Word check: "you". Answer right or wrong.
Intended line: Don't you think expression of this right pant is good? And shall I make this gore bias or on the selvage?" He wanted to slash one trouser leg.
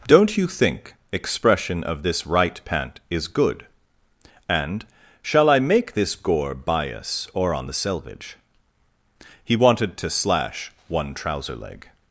right